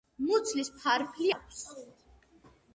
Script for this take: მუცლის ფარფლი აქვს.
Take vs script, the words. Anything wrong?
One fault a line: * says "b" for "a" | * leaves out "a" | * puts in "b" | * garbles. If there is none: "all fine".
all fine